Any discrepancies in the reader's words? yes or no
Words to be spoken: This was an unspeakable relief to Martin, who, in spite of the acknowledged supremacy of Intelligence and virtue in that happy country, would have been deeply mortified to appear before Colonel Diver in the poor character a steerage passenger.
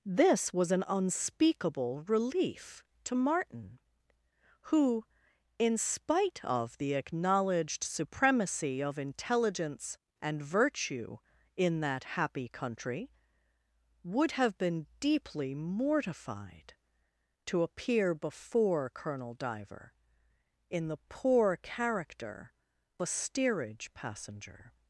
no